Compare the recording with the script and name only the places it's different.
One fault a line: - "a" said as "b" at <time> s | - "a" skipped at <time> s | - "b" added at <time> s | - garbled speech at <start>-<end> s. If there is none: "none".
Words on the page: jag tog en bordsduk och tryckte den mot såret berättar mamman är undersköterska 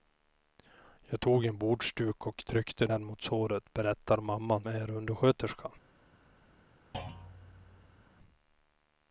none